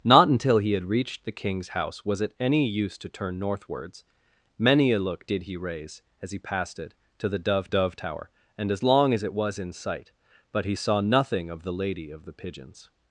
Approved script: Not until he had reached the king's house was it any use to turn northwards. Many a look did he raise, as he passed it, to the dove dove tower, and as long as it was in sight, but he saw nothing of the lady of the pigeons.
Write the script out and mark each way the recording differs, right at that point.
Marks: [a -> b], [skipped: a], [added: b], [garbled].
Not until he had reached the king's house was it any use to turn northwards. Many a look did he raise, as he passed it, to the dove dove tower, and as long as it was in sight, but he saw nothing of the lady of the pigeons.